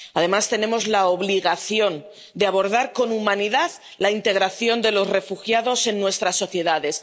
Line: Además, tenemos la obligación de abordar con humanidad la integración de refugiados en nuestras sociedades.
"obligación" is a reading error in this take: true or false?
false